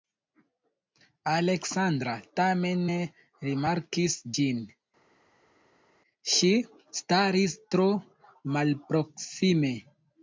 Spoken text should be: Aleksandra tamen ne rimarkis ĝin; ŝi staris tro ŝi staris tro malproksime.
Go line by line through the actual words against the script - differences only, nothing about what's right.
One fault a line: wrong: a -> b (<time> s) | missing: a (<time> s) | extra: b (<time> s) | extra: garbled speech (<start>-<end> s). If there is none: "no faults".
missing: ŝi staris tro (7.9 s)